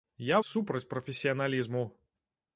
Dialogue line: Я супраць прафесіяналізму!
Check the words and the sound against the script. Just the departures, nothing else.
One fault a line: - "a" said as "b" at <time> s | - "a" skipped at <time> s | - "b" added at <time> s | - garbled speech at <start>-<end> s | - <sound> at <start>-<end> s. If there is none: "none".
none